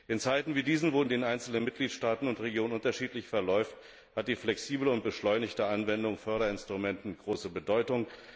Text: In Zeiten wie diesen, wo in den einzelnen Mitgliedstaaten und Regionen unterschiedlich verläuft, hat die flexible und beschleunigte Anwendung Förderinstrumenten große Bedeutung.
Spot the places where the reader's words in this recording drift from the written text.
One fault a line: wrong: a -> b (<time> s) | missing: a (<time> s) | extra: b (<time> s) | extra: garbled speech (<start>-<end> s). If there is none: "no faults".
no faults